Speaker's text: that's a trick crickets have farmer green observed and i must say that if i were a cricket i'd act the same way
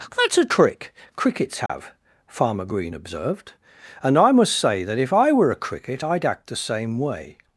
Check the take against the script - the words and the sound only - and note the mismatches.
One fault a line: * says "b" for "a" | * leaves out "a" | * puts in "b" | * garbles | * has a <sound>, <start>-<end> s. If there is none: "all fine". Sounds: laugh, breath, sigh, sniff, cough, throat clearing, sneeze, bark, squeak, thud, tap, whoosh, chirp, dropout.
* has a dropout, 1.7-1.7 s